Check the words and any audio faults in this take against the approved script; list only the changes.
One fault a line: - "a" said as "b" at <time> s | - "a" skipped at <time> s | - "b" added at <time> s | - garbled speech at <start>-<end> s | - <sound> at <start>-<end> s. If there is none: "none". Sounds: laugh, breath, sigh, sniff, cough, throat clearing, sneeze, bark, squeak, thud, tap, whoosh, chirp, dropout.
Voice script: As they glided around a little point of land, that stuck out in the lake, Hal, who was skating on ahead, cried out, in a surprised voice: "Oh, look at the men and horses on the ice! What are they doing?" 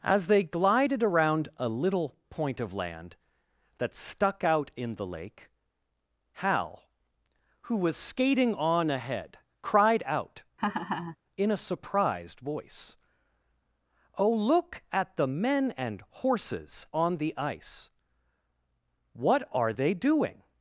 - laugh at 10.6-11.2 s